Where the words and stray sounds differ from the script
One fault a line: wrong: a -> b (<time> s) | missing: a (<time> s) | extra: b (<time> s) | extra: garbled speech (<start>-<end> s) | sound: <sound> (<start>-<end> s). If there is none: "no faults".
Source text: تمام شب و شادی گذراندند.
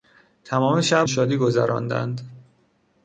no faults